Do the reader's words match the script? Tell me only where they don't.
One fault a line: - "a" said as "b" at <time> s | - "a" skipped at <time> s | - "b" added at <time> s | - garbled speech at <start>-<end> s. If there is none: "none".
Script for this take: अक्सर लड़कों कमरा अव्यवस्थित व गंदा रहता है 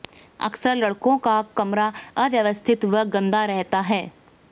- "का" added at 1.2 s